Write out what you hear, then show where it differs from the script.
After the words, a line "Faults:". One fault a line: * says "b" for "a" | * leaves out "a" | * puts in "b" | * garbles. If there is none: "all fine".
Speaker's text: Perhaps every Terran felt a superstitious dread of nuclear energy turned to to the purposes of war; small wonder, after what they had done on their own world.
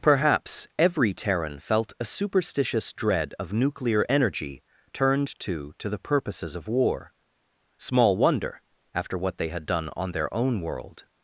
Perhaps every Terran felt a superstitious dread of nuclear energy turned to to the purposes of war; small wonder, after what they had done on their own world.
Faults:
all fine